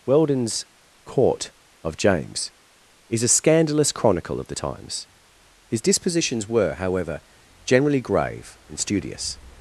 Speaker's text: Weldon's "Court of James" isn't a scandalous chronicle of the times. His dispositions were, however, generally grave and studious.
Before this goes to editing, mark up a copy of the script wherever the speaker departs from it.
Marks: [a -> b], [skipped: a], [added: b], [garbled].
Weldon's "Court of James" [isn't -> is] a scandalous chronicle of the times. His dispositions were, however, generally grave and studious.